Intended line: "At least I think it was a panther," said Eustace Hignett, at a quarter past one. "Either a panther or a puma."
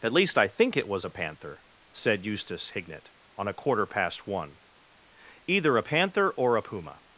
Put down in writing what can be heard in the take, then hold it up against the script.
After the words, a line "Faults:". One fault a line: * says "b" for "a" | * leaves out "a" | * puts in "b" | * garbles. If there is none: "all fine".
"At least I think it was a panther," said Eustace Hignett, on a quarter past one. "Either a panther or a puma."
Faults:
* says "on" for "at"